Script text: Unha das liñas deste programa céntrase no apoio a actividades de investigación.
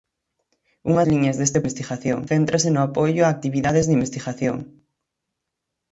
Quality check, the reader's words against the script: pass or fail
fail